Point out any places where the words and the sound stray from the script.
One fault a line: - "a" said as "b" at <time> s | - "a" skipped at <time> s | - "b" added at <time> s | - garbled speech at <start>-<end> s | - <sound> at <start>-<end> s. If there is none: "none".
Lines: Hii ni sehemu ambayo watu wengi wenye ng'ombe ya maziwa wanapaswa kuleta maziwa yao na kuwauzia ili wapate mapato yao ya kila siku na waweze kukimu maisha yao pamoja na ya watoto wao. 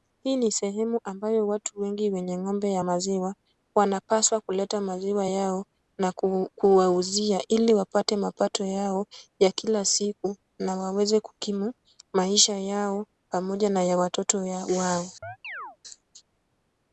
- chirp at 15.2-15.8 s